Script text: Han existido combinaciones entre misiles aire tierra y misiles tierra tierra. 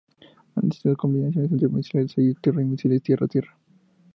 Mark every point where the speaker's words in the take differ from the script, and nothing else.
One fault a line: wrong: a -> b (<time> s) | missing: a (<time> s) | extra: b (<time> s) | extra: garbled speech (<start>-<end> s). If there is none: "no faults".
no faults